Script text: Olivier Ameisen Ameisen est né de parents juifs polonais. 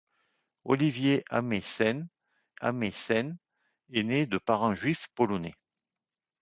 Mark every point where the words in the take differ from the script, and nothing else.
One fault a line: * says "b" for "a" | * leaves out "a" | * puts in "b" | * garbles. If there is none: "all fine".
all fine